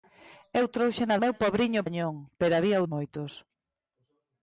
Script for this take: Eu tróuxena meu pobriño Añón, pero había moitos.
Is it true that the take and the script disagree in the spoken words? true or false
false